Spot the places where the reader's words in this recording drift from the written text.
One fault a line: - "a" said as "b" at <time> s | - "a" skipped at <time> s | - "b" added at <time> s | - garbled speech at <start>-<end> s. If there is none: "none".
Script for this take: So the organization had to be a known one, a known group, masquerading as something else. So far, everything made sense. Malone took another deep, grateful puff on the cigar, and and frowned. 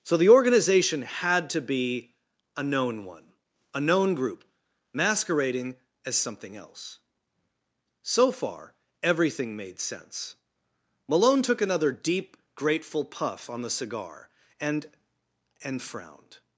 none